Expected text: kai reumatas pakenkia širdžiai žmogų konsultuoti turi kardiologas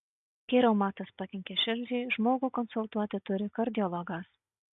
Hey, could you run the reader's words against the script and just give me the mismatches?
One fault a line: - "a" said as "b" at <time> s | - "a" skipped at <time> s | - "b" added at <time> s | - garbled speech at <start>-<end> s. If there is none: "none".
none